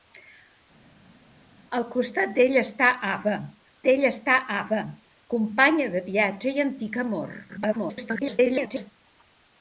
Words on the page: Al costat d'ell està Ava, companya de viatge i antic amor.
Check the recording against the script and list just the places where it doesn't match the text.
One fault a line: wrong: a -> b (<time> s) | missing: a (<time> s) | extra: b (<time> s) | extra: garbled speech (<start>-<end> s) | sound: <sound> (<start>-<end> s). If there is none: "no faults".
extra: d'ell està Ava (3.9 s)
extra: garbled speech (7.5-8.9 s)